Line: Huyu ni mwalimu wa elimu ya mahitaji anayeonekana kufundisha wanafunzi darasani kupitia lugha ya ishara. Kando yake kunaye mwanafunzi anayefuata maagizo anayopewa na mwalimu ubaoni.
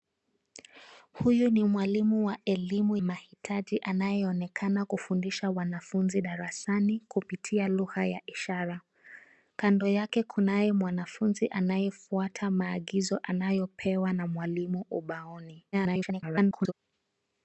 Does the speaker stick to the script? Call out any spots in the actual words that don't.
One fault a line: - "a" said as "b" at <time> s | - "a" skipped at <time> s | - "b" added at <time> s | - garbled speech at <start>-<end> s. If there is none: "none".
- "ya" skipped at 3.0 s
- garbled speech at 15.7-16.7 s